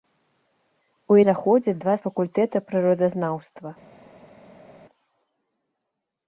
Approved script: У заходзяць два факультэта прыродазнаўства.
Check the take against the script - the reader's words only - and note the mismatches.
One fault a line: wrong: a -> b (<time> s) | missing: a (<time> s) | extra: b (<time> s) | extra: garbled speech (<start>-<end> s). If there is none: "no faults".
no faults